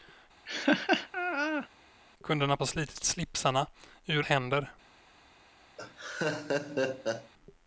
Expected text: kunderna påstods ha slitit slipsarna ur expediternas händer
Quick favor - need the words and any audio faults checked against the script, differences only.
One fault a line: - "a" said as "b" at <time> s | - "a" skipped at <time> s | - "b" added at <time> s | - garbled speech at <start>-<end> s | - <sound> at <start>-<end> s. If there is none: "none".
- laugh at 0.5-1.7 s
- "påstods" skipped at 2.6 s
- "expediternas" skipped at 4.3 s
- laugh at 5.8-7.3 s